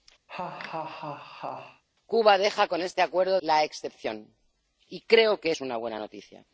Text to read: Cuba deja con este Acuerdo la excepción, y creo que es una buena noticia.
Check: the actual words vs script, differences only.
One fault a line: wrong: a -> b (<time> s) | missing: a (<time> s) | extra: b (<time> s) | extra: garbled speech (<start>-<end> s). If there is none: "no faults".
no faults